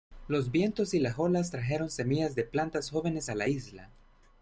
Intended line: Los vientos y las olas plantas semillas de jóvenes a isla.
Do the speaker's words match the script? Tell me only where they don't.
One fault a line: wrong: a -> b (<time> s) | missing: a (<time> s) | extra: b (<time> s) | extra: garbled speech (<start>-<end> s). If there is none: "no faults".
wrong: plantas -> trajeron (1.5 s)
extra: plantas (2.4 s)
extra: la (3.4 s)